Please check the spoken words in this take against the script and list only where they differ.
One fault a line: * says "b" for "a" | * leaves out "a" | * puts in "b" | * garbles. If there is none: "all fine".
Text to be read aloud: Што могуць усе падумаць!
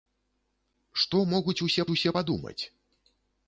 * puts in "усе"